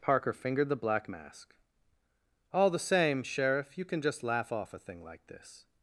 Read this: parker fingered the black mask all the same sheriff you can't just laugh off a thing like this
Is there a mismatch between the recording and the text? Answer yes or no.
yes